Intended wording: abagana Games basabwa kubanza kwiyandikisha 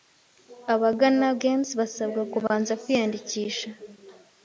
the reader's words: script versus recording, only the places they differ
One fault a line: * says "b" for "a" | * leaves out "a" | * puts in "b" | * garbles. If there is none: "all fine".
all fine